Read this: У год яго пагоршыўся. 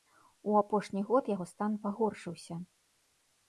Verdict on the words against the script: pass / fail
fail